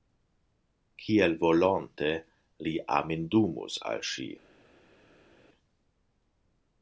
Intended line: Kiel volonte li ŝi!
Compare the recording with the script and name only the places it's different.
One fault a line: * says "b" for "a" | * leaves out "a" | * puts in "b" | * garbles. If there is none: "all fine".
* puts in "amindumus al"